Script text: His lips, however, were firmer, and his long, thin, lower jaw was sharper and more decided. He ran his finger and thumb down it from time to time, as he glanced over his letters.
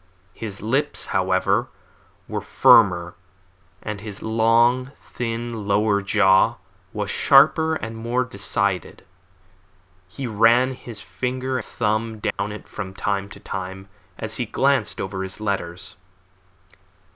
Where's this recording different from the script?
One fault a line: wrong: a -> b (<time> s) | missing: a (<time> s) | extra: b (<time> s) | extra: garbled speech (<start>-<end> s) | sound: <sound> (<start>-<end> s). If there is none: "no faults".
missing: and (11.6 s)
sound: dropout (12.3-12.4 s)